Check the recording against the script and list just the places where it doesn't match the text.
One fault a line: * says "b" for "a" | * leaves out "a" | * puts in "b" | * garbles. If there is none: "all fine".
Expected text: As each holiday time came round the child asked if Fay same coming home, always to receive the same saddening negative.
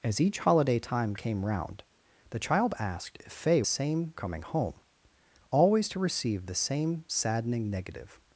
all fine